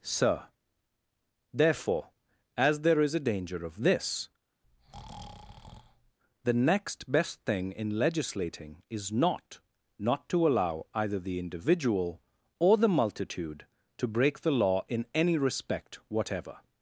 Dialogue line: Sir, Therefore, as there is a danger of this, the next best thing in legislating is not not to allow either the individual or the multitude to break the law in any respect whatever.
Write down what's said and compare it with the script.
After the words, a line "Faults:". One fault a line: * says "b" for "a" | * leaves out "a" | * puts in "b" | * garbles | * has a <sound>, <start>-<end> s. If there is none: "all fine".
Sir, Therefore, as there is a danger of this, the next best thing in legislating is not not to allow either the individual or the multitude to break the law in any respect whatever.
Faults:
* has a breath, 4.6-6.2 s